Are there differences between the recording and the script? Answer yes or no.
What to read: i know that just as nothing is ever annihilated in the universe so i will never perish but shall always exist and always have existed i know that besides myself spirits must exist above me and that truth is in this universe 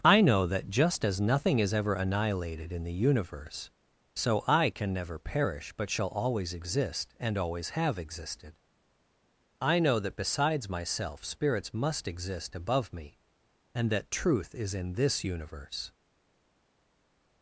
yes